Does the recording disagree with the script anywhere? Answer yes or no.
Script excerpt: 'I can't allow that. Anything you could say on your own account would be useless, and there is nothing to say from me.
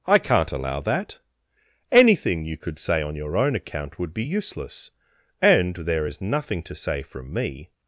no